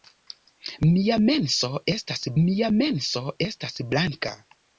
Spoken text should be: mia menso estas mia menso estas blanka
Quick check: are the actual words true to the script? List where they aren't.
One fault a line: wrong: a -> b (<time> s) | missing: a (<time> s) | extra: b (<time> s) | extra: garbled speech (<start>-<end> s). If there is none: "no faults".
no faults